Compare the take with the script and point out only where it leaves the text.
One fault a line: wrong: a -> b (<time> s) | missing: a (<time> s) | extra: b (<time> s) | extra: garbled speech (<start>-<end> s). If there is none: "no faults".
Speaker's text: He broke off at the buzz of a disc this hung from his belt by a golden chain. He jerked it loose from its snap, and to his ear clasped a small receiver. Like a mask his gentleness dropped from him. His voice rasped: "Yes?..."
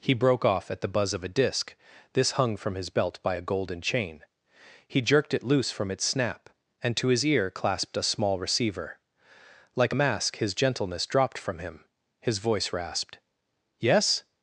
no faults